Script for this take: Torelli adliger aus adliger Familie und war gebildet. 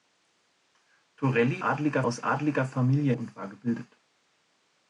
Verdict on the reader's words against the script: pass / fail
pass